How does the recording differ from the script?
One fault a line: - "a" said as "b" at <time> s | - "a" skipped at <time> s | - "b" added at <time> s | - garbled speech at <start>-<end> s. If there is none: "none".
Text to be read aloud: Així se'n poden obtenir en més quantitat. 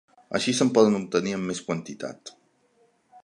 none